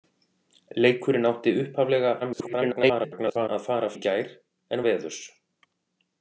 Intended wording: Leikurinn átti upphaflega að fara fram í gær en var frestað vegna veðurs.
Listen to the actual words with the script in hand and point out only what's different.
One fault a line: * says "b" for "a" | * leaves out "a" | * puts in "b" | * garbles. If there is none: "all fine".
* garbles
* leaves out "fram"
* leaves out "var frestað vegna"